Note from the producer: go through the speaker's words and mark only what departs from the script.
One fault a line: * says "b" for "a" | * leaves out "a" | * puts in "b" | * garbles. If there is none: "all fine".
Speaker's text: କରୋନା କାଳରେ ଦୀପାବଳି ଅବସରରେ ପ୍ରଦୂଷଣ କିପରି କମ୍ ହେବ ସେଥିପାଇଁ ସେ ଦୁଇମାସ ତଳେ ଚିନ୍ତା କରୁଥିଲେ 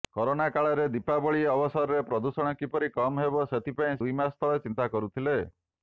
* leaves out "ସେ"